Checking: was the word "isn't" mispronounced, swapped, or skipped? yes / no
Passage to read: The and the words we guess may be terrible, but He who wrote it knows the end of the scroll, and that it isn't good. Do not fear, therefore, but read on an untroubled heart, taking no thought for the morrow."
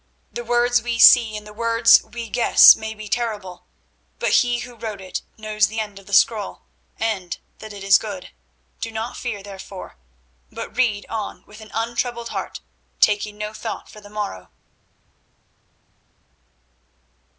yes